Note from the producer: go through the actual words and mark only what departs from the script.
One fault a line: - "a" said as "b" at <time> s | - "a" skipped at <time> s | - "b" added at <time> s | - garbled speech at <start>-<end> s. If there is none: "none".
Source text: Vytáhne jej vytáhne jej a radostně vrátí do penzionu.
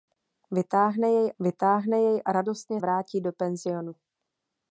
none